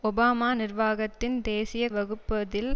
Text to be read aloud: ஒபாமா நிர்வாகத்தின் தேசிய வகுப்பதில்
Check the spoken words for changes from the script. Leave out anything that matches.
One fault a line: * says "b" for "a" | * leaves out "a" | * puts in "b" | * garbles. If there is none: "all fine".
all fine